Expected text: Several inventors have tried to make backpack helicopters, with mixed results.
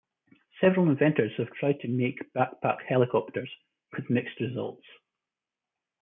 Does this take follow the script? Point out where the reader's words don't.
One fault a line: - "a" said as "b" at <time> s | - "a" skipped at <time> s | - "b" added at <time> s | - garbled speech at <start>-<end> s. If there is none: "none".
none